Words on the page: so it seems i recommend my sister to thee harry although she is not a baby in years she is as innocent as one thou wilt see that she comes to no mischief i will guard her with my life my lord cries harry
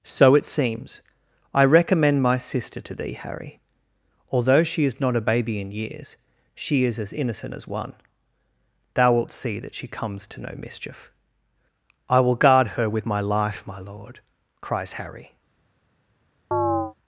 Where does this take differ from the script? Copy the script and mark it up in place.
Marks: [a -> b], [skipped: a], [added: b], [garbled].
so it seems i recommend my sister to thee harry although she is not a baby in years she is as innocent as one thou wilt see that she comes to no mischief i will guard her with my life my lord cries harry